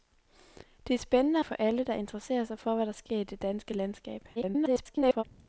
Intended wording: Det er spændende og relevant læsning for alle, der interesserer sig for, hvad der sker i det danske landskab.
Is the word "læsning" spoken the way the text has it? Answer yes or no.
no